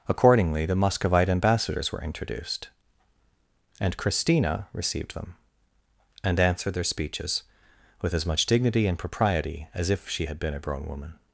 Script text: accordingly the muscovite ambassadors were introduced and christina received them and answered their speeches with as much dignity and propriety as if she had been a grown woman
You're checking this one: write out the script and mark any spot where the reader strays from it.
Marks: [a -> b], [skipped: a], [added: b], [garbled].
accordingly the muscovite ambassadors were introduced and christina received them and answered their speeches with as much dignity and propriety as if she had been a grown woman